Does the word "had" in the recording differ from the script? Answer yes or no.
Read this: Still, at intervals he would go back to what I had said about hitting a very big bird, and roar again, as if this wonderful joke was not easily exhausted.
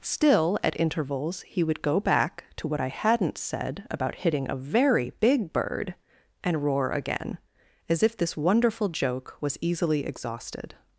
yes